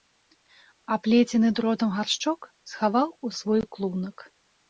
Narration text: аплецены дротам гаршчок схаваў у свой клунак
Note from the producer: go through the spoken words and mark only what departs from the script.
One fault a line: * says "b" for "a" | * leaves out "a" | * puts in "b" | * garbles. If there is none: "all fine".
all fine